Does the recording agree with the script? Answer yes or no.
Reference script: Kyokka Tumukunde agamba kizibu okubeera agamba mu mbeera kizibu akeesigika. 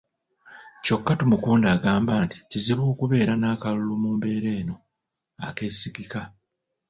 no